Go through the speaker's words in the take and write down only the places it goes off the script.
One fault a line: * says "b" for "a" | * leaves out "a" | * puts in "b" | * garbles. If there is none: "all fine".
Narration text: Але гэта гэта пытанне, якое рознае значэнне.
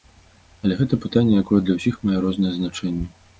* leaves out "гэта"
* puts in "для ўсіх мае"